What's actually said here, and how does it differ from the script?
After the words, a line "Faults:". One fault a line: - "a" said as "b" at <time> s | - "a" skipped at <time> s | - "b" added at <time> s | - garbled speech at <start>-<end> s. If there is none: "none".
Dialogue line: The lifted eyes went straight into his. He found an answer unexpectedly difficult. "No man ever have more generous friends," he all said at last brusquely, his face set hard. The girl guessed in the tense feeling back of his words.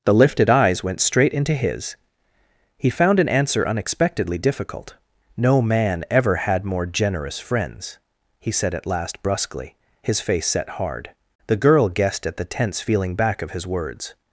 The lifted eyes went straight into his. He found an answer unexpectedly difficult. "No man ever had more generous friends," he said at last brusquely, his face set hard. The girl guessed at the tense feeling back of his words.
Faults:
- "have" said as "had" at 6.4 s
- "all" skipped at 8.5 s
- "in" said as "at" at 12.3 s